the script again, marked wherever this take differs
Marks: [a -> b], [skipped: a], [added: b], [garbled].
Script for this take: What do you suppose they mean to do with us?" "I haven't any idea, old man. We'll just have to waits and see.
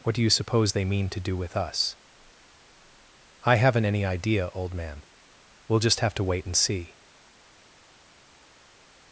What do you suppose they mean to do with us?" "I haven't any idea, old man. We'll just have to [waits -> wait] and see.